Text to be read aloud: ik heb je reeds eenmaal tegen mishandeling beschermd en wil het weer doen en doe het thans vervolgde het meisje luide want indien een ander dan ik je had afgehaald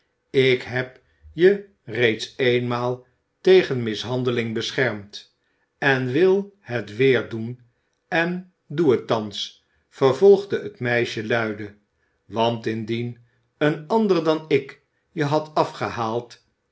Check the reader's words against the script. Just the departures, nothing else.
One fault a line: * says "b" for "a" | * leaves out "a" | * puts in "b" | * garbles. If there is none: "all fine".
all fine